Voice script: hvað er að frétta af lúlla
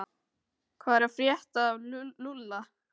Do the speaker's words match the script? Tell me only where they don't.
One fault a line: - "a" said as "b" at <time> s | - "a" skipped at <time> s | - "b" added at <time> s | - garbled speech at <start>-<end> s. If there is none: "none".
none